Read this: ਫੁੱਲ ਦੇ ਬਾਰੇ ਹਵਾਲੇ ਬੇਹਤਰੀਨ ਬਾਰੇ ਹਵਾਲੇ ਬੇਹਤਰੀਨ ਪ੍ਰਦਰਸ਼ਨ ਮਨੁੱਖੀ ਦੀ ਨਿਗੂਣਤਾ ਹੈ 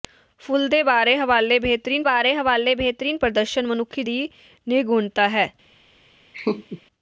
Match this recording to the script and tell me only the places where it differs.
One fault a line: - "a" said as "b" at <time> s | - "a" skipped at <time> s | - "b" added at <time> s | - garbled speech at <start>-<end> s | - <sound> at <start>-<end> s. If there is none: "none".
- laugh at 6.3-6.8 s